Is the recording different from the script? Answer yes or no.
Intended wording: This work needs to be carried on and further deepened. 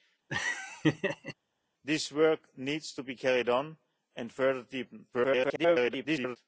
yes